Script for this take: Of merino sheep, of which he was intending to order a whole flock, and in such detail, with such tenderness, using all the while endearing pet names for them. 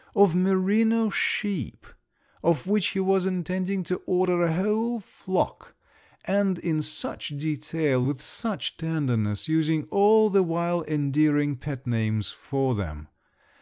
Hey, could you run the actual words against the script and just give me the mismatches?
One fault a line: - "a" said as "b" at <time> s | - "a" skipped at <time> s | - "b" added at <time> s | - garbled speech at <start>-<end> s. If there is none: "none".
none